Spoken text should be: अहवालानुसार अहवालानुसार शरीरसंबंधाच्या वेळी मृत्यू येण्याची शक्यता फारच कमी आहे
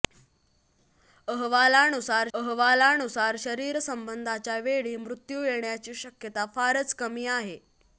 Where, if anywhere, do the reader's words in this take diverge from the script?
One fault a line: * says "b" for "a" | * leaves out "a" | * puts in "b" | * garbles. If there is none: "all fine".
all fine